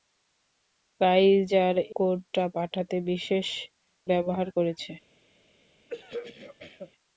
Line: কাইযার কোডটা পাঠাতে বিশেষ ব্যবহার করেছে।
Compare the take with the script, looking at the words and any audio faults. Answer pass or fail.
fail